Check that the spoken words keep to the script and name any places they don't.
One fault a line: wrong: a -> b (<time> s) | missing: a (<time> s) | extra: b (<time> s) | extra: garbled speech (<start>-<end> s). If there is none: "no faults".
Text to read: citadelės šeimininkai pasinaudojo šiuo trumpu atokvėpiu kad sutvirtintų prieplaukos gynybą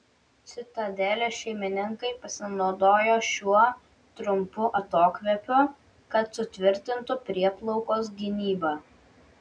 no faults